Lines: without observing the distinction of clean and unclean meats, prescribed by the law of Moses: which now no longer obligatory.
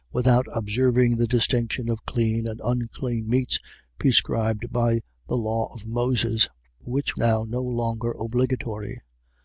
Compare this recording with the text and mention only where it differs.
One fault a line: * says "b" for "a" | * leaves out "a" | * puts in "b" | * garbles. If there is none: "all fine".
all fine